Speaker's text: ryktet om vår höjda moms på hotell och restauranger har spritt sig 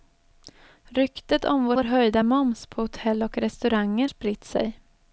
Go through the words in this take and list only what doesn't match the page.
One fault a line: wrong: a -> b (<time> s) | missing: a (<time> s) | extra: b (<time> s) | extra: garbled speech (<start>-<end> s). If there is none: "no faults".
extra: vår (1.7 s)
missing: har (4.1 s)